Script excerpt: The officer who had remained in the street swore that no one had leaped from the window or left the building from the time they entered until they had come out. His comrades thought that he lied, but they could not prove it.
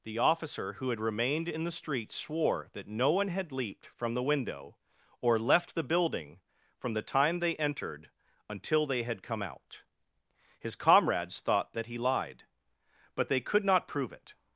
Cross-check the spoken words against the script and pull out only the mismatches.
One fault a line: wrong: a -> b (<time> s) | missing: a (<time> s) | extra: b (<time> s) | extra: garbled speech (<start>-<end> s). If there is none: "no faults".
no faults